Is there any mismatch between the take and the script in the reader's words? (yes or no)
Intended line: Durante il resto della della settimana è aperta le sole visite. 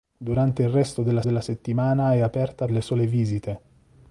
no